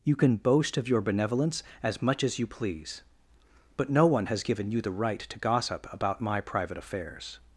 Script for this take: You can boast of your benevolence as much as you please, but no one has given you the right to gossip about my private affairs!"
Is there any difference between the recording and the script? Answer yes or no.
no